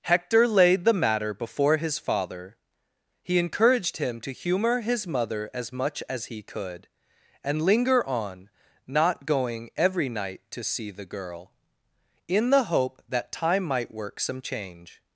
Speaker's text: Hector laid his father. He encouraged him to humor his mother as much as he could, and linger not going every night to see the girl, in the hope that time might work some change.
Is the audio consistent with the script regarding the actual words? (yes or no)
no